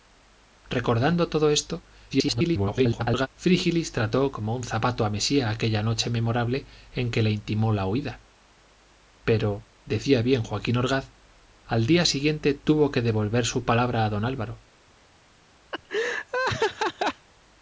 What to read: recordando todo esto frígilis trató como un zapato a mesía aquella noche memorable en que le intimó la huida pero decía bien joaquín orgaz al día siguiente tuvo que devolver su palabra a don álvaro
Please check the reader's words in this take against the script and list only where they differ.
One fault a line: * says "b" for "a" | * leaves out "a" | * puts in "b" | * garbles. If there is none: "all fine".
* garbles